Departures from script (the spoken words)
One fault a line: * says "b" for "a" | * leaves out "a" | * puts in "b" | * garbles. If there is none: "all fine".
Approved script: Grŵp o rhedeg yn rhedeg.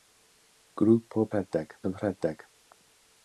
all fine